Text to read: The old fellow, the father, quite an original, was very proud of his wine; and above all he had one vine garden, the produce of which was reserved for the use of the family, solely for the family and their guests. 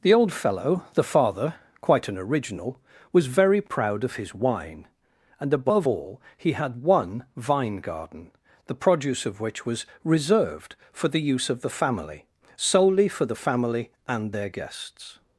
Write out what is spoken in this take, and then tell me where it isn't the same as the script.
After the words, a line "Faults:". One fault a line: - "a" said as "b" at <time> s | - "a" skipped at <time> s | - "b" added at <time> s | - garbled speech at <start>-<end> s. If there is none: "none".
The old fellow, the father, quite an original, was very proud of his wine; and above all he had one vine garden, the produce of which was reserved for the use of the family, solely for the family and their guests.
Faults:
none